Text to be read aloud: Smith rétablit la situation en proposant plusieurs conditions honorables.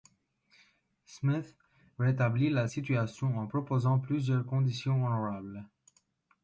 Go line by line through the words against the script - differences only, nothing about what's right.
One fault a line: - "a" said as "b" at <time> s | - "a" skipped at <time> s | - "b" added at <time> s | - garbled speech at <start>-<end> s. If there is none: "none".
none